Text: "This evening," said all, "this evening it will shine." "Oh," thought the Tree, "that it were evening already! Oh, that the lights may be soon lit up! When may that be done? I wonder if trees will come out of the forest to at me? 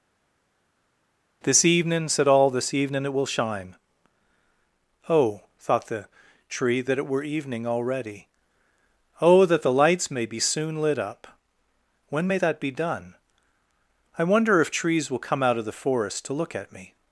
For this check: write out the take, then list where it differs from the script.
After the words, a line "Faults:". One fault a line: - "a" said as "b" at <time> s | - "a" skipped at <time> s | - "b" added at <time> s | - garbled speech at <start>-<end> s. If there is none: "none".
"This evening," said all, "this evening it will shine." "Oh," thought the Tree, "that it were evening already! Oh, that the lights may be soon lit up! When may that be done? I wonder if trees will come out of the forest to look at me?
Faults:
- "look" added at 16.3 s